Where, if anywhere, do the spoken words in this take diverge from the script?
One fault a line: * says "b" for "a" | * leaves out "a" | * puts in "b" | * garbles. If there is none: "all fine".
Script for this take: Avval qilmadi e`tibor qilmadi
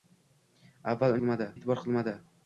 all fine